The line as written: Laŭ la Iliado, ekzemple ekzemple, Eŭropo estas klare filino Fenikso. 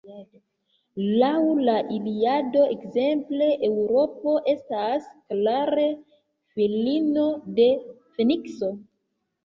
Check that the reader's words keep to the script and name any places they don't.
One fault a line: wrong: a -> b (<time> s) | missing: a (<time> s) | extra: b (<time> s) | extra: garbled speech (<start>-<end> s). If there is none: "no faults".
missing: ekzemple (3.5 s)
extra: de (7.6 s)